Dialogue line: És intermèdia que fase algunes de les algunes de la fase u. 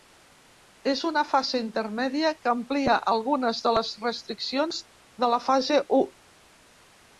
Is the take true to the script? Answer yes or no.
no